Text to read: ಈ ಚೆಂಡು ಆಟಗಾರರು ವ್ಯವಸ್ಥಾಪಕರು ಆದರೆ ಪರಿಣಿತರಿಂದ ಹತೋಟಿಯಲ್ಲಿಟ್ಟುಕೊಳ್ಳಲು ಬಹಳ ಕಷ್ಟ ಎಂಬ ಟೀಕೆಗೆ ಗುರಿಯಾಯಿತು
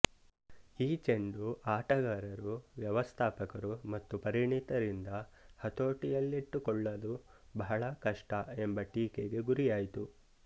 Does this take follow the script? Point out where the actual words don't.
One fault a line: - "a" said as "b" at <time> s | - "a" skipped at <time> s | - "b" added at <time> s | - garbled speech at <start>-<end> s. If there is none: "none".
- "ಆದರೆ" said as "ಮತ್ತು" at 3.9 s